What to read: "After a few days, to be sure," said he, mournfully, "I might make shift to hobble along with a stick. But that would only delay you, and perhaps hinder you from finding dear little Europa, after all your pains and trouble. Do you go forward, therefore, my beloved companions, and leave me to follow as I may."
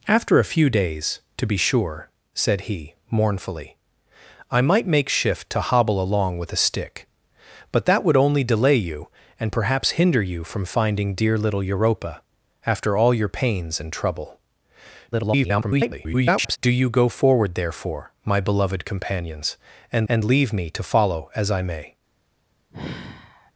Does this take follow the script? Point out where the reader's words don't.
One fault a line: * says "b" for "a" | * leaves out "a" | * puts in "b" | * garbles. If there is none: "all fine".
* garbles
* puts in "and"